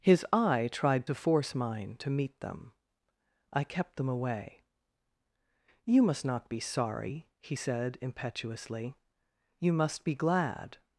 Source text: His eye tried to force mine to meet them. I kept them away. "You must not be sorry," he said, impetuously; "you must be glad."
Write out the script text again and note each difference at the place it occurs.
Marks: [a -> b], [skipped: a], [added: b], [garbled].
His eye tried to force mine to meet them. I kept them away. "You must not be sorry," he said, impetuously; "you must be glad."